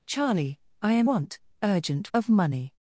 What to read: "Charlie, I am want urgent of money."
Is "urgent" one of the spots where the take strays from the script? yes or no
no